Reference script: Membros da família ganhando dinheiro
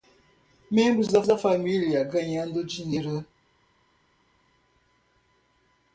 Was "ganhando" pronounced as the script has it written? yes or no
yes